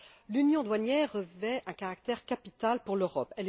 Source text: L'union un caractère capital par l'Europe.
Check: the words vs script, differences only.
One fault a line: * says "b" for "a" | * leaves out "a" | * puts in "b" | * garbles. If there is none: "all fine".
* puts in "douanière revêt"
* says "pour" for "par"